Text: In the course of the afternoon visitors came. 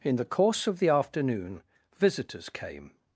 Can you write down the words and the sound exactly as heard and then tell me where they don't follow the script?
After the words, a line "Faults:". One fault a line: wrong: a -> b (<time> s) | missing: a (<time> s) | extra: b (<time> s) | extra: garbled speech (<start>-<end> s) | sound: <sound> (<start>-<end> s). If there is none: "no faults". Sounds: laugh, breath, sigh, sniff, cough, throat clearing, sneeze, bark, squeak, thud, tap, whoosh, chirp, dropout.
In the course of the afternoon visitors came.
Faults:
no faults